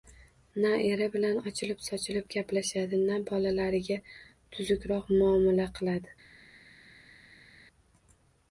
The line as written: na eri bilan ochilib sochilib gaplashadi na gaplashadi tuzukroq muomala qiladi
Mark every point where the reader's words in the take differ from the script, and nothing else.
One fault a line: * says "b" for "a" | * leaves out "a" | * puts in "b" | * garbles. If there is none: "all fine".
* says "bolalariga" for "gaplashadi"